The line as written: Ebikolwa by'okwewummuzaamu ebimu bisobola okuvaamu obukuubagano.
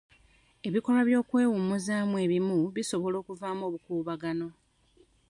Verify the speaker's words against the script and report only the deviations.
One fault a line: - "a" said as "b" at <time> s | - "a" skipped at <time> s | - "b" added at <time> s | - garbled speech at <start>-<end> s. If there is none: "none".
none